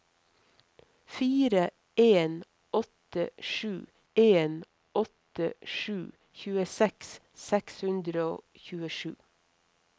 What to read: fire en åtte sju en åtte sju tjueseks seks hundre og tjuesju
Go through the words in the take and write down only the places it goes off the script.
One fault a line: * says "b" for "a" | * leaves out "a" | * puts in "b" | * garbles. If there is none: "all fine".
all fine